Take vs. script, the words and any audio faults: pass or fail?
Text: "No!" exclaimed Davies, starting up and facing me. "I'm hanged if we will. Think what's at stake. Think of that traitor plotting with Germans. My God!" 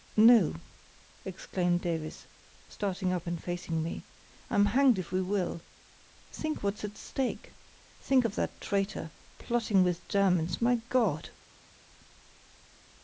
pass